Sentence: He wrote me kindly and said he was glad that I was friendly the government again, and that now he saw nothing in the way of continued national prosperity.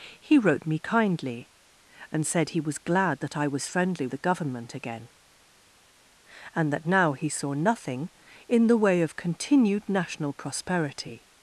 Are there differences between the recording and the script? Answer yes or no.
no